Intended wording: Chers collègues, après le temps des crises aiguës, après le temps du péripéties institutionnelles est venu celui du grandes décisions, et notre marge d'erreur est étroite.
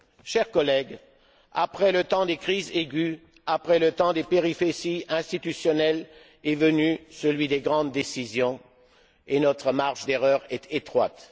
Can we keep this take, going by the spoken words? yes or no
no